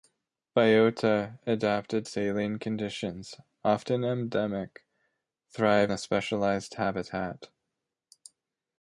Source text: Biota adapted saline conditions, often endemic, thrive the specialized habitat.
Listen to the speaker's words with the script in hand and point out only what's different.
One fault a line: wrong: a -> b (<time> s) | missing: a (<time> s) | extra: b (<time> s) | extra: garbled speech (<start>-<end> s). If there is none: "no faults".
no faults